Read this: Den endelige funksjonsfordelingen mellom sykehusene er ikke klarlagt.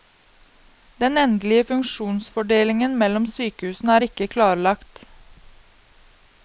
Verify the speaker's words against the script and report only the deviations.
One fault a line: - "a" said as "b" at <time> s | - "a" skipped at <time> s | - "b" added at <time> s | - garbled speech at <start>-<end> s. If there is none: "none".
none